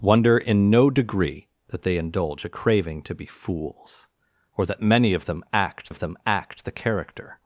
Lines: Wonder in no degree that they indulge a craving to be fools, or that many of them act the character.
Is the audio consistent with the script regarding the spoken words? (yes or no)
no